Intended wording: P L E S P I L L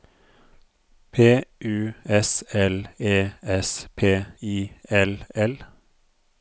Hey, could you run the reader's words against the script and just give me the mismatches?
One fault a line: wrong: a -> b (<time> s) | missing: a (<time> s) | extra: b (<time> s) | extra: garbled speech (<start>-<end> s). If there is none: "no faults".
extra: U S (1.6 s)